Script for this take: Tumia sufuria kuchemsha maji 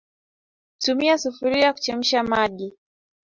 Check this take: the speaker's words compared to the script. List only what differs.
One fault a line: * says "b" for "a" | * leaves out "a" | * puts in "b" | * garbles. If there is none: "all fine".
all fine